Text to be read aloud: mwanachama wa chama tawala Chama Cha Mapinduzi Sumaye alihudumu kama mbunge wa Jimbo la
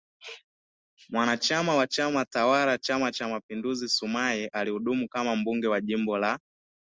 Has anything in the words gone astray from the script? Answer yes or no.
no